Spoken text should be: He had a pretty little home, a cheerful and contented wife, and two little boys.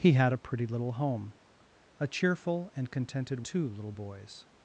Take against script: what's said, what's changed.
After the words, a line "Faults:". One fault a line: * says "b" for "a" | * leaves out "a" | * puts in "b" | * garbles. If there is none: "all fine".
He had a pretty little home, a cheerful and contented two little boys.
Faults:
* leaves out "wife and"